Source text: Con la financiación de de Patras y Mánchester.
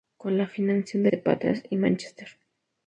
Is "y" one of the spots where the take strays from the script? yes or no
no